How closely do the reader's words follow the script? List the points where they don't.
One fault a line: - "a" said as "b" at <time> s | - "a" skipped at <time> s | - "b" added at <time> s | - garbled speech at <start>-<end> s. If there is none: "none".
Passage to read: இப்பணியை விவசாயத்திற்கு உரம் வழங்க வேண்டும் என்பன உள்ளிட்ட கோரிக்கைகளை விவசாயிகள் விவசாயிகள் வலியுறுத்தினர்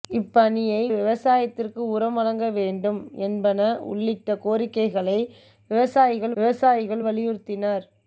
none